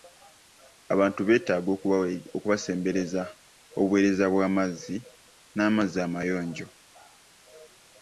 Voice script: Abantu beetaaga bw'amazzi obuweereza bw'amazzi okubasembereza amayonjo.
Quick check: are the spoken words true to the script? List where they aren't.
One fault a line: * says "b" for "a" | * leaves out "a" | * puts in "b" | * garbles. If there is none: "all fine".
* says "okubasembereza" for "bw'amazzi"
* says "n'amazzi" for "okubasembereza"